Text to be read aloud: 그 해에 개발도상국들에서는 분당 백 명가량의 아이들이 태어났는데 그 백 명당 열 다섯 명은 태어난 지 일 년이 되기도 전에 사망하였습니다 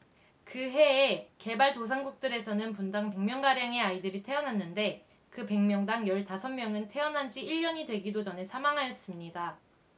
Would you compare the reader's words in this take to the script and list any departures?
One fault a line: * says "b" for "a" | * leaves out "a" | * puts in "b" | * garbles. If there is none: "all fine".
all fine